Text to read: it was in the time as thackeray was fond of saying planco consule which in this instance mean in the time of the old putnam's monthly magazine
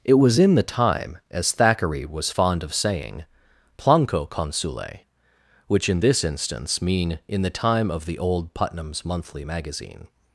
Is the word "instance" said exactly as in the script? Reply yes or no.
yes